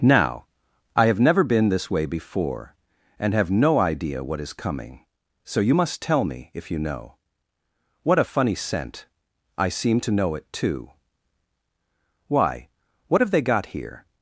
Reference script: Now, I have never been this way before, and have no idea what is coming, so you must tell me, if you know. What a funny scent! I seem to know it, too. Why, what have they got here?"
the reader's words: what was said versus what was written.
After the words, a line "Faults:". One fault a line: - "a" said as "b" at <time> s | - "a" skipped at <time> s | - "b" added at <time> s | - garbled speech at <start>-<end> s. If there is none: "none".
Now, I have never been this way before, and have no idea what is coming, so you must tell me, if you know. What a funny scent! I seem to know it, too. Why, what have they got here?"
Faults:
none